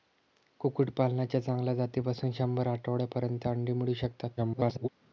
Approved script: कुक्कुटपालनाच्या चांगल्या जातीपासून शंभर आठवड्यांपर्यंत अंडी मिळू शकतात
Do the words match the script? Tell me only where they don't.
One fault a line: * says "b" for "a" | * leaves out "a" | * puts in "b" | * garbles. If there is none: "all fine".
* garbles